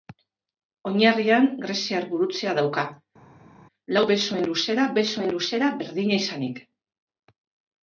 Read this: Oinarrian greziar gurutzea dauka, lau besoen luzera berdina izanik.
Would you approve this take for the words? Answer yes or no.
no